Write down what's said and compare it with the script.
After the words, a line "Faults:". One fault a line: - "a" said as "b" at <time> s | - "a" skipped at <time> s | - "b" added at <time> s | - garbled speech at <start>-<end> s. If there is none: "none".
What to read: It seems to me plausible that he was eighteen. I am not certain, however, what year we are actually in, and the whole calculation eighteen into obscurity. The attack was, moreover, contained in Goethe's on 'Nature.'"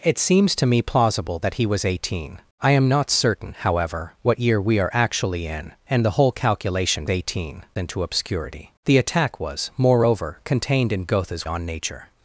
It seems to me plausible that he was eighteen. I am not certain, however, what year we are actually in, and the whole calculation eighteen into obscurity. The attack was, moreover, contained in Goethe's on 'Nature.'"
Faults:
none